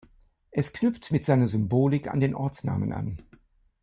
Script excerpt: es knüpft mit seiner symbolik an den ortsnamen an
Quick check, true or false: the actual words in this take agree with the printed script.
true